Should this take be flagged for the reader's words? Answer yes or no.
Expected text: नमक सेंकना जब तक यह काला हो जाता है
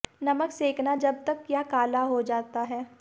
no